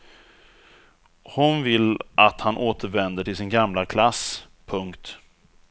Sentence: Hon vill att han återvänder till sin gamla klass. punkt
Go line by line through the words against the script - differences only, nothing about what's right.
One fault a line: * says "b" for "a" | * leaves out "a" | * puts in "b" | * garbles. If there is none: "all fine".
all fine